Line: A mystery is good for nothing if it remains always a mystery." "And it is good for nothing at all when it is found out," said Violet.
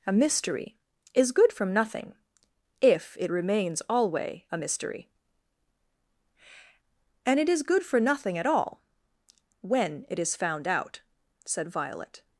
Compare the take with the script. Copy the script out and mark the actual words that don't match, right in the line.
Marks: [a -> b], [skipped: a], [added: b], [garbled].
A mystery is good [for -> from] nothing if it remains [always -> alway] a mystery." "And it is good for nothing at all when it is found out," said Violet.